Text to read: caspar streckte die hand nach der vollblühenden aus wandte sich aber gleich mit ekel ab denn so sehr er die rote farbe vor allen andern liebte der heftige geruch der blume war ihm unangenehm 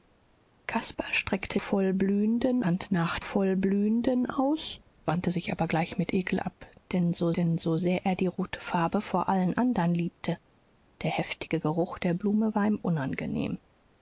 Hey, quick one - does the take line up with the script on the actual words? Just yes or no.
no